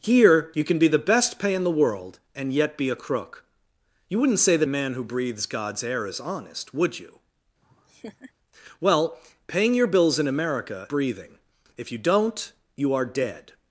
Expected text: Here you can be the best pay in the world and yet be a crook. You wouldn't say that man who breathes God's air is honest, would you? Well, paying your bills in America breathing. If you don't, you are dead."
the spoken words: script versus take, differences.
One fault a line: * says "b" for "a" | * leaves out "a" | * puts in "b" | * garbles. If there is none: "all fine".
all fine